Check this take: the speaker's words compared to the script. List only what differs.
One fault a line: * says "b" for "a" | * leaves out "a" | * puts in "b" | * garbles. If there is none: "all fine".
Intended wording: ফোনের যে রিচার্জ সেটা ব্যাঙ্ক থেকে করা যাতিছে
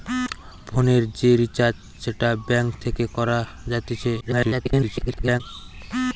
* garbles